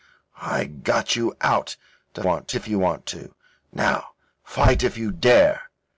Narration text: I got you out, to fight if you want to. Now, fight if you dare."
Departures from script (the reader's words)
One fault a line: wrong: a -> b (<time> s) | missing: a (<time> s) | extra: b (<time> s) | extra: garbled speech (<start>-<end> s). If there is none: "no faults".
wrong: fight -> want (2.2 s)